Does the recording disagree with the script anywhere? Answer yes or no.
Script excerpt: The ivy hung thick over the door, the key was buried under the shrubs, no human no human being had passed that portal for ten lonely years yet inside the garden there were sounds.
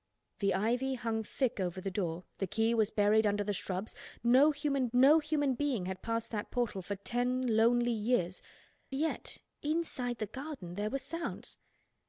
no